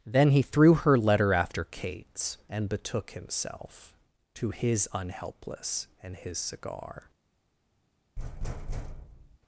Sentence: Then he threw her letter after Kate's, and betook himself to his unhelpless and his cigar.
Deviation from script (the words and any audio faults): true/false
true